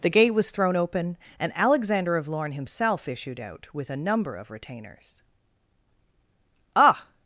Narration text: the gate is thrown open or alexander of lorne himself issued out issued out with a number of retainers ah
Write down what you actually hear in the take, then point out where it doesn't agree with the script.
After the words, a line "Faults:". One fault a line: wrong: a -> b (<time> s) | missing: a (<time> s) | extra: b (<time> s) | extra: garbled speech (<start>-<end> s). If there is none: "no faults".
the gate was thrown open and alexander of lorne himself issued out with a number of retainers ah
Faults:
wrong: is -> was (0.3 s)
wrong: or -> and (1.4 s)
missing: issued out (3.7 s)